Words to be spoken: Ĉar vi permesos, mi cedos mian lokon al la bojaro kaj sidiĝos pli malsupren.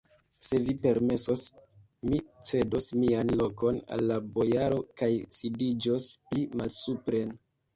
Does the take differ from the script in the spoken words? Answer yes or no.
yes